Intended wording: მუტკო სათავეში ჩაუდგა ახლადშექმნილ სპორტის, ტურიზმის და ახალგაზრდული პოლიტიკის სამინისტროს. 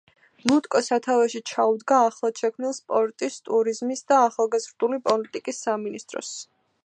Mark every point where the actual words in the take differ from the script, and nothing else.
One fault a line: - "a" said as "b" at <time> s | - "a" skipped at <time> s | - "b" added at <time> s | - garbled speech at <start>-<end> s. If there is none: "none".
none